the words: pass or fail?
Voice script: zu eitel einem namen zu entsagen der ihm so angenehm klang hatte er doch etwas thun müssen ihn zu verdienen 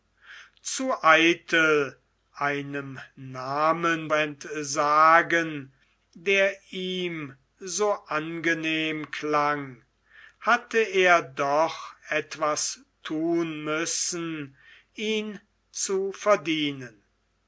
fail